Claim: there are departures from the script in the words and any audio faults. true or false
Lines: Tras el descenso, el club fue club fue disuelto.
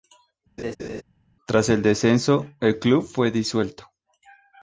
true